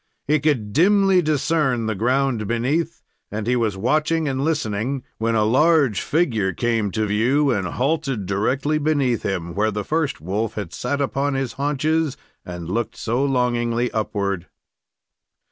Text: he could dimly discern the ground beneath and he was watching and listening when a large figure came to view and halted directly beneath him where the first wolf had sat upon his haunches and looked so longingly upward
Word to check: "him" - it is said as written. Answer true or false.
true